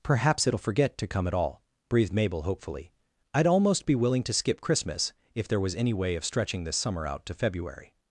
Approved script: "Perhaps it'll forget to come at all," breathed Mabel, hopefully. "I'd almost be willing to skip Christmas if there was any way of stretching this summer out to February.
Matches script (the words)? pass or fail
pass